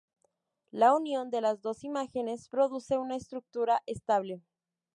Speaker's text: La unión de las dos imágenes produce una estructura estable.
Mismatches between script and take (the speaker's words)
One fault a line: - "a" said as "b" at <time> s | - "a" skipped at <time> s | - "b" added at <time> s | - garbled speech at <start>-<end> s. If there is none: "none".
none